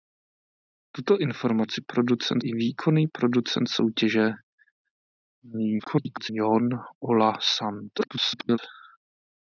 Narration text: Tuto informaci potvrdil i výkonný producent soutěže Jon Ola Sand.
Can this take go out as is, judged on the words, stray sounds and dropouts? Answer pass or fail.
fail